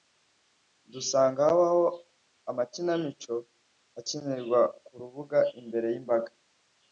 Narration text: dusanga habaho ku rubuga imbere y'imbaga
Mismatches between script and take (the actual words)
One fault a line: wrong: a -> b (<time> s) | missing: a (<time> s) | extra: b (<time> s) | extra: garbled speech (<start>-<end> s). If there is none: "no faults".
extra: amakinamico akinirwa (2.5 s)